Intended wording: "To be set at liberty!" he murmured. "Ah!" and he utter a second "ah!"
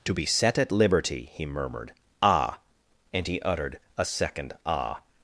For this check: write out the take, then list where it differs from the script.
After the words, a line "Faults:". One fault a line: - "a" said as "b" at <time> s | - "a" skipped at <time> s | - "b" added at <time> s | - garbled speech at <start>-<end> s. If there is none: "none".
"To be set at liberty!" he murmured. "Ah!" and he uttered a second "ah!"
Faults:
- "utter" said as "uttered" at 3.4 s